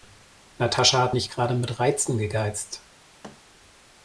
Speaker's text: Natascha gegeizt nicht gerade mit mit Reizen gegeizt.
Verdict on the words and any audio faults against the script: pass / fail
fail